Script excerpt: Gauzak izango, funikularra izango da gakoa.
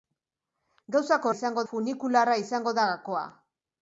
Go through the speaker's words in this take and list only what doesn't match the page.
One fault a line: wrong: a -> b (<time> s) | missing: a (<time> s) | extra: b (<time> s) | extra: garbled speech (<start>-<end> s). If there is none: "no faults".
no faults